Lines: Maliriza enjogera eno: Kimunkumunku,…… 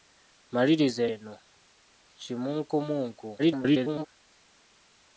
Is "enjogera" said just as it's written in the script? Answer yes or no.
no